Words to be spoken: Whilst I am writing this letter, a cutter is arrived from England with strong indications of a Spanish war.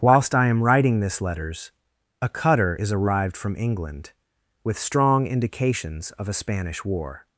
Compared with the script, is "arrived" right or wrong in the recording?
right